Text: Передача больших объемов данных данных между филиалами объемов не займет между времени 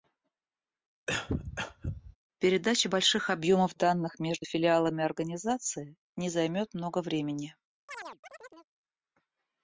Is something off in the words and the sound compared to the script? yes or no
yes